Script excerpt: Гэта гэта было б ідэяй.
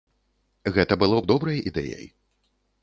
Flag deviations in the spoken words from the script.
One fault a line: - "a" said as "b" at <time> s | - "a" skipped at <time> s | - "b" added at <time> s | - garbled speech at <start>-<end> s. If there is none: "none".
- "гэта" skipped at 0.9 s
- "добрай" added at 1.3 s